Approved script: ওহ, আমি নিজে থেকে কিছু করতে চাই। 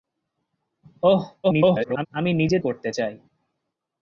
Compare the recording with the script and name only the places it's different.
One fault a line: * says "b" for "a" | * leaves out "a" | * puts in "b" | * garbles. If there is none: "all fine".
* garbles
* leaves out "থেকে কিছু"